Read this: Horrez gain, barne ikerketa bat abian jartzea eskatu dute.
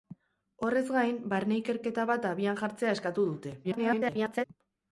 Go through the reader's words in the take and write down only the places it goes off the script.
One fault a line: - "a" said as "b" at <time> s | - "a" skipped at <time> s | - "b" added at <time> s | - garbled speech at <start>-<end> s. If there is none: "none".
- garbled speech at 3.6-4.5 s